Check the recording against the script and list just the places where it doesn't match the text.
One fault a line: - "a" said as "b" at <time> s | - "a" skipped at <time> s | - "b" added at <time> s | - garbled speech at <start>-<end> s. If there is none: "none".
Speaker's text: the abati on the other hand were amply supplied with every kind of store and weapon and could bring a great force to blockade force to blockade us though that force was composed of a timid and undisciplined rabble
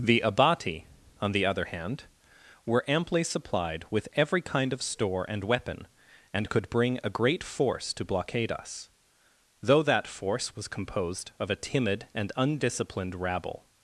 - "force to blockade" skipped at 8.5 s